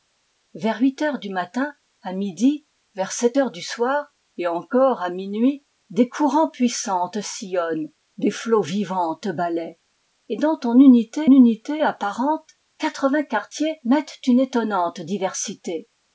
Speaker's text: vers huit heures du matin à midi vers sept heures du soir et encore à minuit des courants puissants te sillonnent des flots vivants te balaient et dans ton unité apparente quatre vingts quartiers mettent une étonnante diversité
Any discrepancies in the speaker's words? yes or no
yes